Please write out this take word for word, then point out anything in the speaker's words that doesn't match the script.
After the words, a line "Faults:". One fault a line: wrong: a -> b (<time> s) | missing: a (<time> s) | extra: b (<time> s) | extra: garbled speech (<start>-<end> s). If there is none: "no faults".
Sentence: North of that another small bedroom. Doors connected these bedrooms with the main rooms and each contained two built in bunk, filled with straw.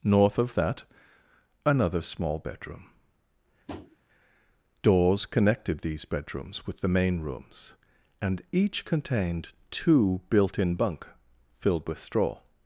North of that another small bedroom. Doors connected these bedrooms with the main rooms and each contained two built in bunk, filled with straw.
Faults:
no faults